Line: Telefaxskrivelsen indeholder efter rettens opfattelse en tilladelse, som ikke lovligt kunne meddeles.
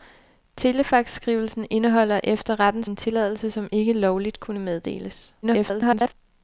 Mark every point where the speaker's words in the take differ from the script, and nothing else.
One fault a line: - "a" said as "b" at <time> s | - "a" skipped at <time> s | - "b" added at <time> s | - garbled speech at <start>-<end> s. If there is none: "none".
- "opfattelse" skipped at 2.9 s
- garbled speech at 5.4-6.1 s